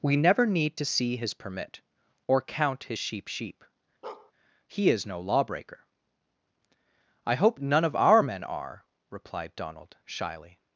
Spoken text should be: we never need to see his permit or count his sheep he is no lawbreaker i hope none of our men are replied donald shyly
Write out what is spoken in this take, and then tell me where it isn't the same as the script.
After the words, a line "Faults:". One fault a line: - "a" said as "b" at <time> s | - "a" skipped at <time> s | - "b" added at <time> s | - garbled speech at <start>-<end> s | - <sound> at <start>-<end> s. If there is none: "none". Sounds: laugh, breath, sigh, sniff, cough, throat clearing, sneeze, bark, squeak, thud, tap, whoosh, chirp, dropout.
we never need to see his permit or count his sheep sheep he is no lawbreaker i hope none of our men are replied donald shyly
Faults:
- "sheep" added at 3.3 s
- bark at 4.0-4.3 s